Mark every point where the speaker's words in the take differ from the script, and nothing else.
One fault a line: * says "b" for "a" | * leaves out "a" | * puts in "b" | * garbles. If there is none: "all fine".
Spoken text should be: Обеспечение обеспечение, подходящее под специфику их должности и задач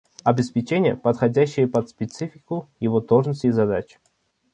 * leaves out "обеспечение"
* says "его" for "их"